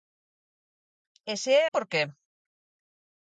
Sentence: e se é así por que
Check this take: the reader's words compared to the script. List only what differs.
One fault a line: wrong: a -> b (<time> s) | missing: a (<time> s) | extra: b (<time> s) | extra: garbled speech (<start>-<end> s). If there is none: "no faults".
missing: así (1.6 s)